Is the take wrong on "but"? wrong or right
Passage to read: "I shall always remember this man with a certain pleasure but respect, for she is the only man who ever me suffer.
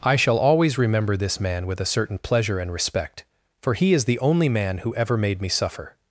wrong